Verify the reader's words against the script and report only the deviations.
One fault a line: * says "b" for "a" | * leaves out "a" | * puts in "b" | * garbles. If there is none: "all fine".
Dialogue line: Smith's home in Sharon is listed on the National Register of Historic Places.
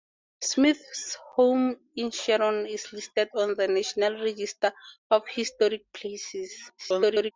* garbles